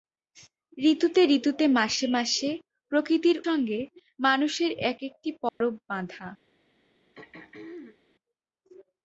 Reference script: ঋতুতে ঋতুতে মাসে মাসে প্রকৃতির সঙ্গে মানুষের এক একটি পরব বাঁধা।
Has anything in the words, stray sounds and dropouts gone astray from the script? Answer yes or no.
yes